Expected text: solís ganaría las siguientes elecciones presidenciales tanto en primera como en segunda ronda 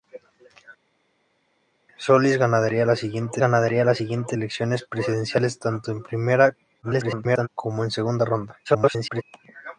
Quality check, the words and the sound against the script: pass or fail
fail